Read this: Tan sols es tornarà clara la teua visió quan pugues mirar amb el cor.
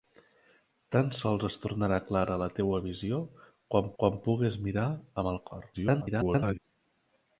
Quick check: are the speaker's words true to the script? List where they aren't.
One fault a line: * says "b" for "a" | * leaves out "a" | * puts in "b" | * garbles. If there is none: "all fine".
* puts in "quan"
* garbles